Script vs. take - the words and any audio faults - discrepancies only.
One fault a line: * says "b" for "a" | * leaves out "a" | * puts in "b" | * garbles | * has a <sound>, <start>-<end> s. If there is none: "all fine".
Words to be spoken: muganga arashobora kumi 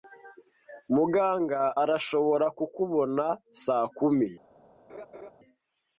* puts in "kukubona saa"
* has a laugh, 4.9-5.3 s